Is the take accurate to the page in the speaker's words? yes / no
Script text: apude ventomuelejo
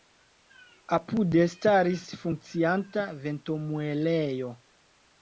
no